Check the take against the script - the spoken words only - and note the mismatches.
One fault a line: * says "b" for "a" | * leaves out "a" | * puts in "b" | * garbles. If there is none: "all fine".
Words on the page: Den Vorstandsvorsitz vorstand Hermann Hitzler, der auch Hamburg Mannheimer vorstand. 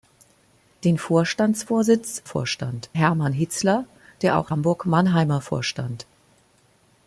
all fine